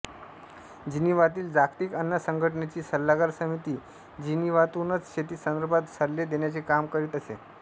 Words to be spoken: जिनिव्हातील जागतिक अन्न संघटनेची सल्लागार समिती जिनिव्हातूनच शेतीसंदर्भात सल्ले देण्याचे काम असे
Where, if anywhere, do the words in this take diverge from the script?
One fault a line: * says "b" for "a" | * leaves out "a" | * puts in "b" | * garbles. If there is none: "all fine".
* puts in "करीत"